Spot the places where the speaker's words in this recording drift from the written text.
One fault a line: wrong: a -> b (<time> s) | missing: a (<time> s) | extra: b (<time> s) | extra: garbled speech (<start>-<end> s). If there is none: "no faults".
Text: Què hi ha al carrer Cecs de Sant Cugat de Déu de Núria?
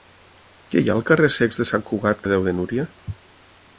no faults